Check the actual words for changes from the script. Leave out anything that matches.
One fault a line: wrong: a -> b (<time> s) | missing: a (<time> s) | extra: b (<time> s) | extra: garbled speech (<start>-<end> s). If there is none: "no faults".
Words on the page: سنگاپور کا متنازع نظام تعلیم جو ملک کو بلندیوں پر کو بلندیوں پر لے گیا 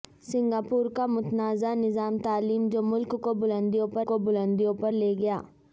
no faults